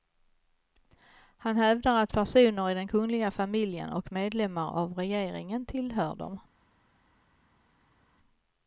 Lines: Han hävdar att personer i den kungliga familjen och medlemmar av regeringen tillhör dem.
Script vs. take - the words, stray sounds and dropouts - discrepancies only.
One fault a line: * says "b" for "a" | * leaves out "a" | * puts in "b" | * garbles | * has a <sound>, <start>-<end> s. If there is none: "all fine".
all fine